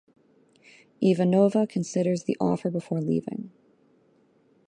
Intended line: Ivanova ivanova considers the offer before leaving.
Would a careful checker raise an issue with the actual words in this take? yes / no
yes